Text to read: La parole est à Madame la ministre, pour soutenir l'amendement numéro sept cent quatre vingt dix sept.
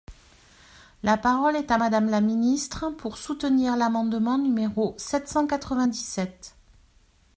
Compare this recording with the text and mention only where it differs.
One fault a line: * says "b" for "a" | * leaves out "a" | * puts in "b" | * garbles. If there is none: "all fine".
all fine